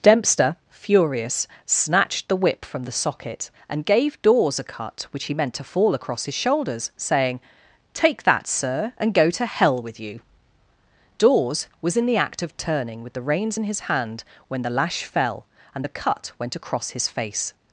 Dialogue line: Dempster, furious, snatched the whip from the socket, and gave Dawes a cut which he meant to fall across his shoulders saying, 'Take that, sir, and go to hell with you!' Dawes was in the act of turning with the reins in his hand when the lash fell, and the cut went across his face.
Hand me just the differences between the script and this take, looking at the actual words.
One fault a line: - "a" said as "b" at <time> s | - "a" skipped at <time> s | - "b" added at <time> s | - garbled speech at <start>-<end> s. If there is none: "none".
none